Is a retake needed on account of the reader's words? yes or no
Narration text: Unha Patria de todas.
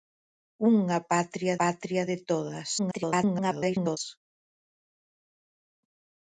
yes